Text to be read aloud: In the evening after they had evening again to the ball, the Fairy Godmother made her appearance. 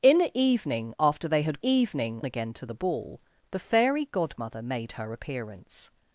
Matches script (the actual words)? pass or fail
pass